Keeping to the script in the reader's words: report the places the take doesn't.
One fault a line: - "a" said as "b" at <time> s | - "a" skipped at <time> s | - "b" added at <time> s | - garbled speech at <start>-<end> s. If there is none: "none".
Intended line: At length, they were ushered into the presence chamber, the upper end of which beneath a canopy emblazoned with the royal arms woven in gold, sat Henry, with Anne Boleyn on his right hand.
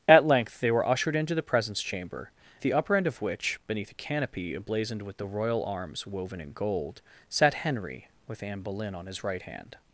none